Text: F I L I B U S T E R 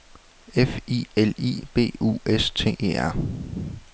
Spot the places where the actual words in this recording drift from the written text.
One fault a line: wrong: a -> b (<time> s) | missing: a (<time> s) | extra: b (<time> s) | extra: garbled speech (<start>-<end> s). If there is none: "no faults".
no faults